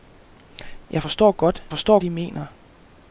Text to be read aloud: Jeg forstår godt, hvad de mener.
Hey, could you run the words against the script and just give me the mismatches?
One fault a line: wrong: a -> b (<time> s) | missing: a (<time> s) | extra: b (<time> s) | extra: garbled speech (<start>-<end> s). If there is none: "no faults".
wrong: hvad -> forstår (1.7 s)